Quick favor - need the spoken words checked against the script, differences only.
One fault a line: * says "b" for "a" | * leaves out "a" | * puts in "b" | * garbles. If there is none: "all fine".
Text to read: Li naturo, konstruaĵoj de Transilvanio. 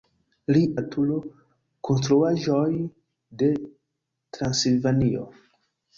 all fine